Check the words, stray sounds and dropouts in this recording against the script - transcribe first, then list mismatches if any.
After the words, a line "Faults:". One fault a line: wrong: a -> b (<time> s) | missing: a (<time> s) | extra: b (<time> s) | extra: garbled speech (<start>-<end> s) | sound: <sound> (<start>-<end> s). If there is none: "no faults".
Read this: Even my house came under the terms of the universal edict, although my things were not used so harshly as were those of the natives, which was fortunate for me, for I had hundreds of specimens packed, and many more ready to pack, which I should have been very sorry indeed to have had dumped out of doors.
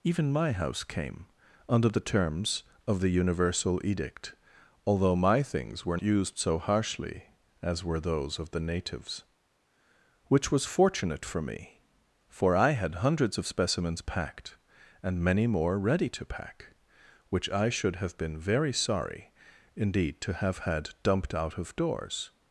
Even my house came under the terms of the universal edict, although my things were used so harshly as were those of the natives, which was fortunate for me, for I had hundreds of specimens packed, and many more ready to pack, which I should have been very sorry indeed to have had dumped out of doors.
Faults:
missing: not (6.0 s)